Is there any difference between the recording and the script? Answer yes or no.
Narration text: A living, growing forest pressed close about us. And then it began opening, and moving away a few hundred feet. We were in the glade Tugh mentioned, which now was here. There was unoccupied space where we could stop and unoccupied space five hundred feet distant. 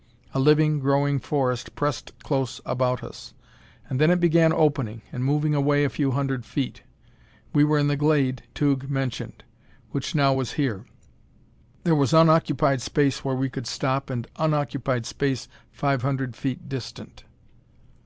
no